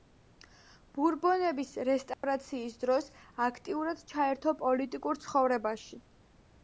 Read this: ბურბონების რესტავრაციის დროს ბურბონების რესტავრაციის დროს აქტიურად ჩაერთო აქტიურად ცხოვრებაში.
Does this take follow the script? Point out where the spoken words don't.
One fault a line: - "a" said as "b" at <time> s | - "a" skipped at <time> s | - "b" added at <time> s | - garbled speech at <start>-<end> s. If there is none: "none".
- "ბურბონების რესტავრაციის დროს" skipped at 3.1 s
- "აქტიურად" said as "პოლიტიკურ" at 4.6 s